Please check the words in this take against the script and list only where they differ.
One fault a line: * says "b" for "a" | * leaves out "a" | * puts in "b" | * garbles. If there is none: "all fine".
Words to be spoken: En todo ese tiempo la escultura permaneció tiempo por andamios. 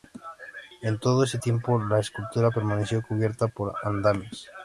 * says "cubierta" for "tiempo"